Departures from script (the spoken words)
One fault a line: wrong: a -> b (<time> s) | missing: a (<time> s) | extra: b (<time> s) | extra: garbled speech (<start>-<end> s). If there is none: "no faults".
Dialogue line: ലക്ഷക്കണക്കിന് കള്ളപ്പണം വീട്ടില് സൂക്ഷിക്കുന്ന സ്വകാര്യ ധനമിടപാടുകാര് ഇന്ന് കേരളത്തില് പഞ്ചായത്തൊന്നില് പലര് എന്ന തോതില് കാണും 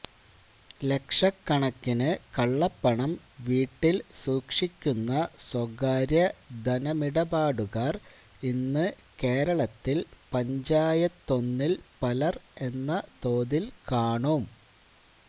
no faults